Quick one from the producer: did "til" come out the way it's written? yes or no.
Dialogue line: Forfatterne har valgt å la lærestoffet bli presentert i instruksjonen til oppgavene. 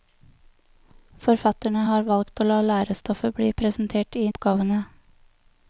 no